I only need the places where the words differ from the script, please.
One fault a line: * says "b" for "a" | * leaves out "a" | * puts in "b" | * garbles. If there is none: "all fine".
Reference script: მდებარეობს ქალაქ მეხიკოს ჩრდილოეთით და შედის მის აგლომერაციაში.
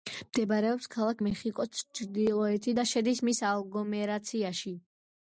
all fine